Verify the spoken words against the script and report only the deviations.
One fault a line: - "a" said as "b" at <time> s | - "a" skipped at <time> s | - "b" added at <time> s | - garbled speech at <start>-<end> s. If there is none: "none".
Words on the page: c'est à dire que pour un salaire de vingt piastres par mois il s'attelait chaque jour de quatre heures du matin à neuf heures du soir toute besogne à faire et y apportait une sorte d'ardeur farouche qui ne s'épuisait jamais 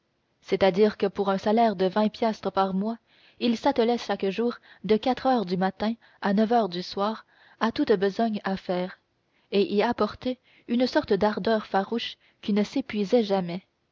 - "à" added at 7.6 s